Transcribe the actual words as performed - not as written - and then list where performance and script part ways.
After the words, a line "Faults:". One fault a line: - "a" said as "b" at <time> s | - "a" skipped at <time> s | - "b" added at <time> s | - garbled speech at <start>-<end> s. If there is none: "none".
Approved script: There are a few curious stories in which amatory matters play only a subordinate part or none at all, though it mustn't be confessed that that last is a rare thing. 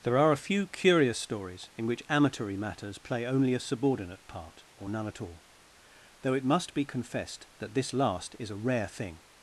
There are a few curious stories in which amatory matters play only a subordinate part or none at all, though it must be confessed that this last is a rare thing.
Faults:
- "mustn't" said as "must" at 6.4 s
- "that" said as "this" at 7.7 s